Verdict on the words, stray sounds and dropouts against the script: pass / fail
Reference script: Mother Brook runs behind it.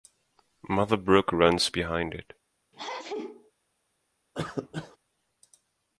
fail